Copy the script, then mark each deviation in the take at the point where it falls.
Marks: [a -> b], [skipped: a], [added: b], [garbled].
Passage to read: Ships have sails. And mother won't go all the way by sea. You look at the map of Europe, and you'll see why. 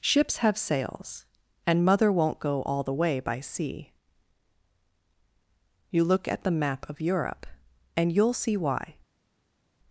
Ships have sails. And mother won't go all the way by sea. You look at the map of Europe, and you'll see why.